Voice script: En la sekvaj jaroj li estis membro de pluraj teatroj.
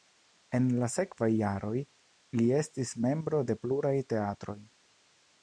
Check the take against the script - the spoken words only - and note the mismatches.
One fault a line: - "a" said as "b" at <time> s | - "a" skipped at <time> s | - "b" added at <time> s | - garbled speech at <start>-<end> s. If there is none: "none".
none